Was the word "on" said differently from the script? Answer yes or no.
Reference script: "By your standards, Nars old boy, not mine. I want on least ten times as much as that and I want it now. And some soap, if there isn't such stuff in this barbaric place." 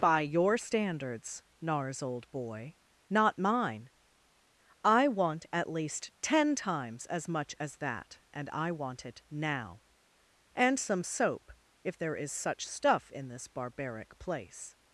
yes